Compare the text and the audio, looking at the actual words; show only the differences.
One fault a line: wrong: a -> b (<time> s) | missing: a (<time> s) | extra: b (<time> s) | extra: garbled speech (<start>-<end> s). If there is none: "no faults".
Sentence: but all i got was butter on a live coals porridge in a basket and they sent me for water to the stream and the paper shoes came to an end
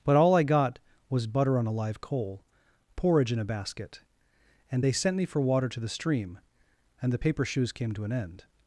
wrong: coals -> coal (2.0 s)